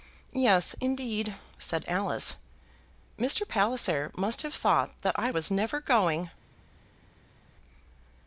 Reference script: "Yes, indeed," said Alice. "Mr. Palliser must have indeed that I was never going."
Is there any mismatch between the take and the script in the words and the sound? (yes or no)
yes